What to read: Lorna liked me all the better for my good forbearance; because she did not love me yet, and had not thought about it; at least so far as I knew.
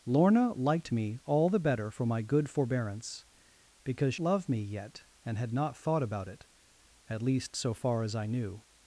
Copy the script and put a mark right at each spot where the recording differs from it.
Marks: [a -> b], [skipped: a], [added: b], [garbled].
Lorna liked me all the better for my good forbearance; because [skipped: she did not] love me yet, and had not thought about it; at least so far as I knew.